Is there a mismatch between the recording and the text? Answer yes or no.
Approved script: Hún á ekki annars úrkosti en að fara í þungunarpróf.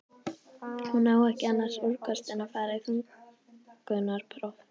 no